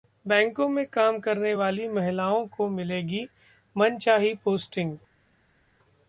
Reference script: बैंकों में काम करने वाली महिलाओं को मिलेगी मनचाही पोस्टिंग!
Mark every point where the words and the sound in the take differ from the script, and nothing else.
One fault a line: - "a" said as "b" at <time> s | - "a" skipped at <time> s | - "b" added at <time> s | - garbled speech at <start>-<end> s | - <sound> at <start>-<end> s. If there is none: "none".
none